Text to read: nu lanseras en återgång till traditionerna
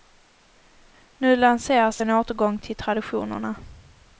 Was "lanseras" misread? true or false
false